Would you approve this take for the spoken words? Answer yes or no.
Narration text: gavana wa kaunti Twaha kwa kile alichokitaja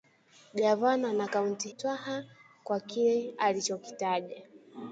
yes